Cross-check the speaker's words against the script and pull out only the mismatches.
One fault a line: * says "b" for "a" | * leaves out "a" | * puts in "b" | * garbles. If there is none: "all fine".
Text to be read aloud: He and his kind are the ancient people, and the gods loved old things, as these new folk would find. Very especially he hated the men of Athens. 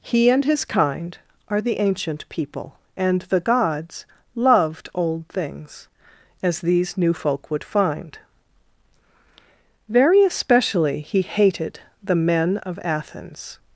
all fine